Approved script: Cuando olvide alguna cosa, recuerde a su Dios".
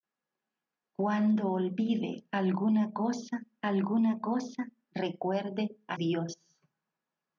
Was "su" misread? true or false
true